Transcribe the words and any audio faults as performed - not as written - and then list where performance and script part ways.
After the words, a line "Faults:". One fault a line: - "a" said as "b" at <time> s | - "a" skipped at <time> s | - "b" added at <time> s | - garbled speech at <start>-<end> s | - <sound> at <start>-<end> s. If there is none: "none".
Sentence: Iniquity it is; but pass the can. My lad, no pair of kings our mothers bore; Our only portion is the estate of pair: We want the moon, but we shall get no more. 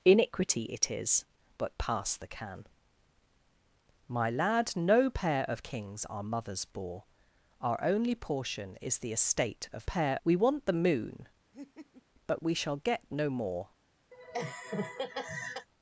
Iniquity it is; but pass the can. My lad, no pair of kings our mothers bore; Our only portion is the estate of pair: We want the moon, but we shall get no more.
Faults:
- laugh at 11.5-12.0 s
- laugh at 14.1-15.7 s